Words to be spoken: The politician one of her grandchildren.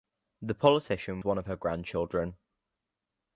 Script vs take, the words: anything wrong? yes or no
no